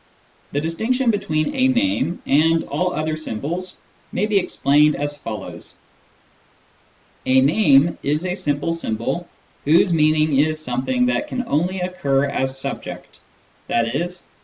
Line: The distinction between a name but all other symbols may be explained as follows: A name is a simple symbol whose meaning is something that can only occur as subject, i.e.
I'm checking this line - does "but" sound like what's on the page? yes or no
no